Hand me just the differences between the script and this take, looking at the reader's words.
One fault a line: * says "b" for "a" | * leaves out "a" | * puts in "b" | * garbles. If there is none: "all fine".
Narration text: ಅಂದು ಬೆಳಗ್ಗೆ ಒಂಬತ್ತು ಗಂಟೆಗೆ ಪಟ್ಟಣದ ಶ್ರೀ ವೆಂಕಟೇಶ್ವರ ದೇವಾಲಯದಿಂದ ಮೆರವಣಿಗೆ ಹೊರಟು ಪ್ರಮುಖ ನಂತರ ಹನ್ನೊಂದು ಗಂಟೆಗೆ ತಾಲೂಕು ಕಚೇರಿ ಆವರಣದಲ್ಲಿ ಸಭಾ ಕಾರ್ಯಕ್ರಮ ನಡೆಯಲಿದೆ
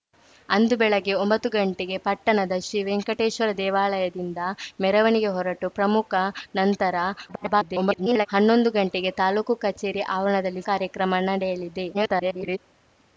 * garbles
* leaves out "ಸಭಾ"
* garbles